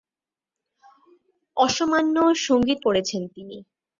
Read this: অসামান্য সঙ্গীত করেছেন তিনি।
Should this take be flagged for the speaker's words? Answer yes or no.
no